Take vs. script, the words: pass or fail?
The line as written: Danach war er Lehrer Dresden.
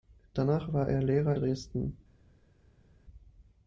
pass